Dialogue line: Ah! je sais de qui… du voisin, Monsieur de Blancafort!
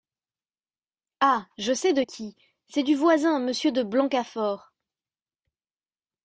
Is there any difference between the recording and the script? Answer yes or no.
yes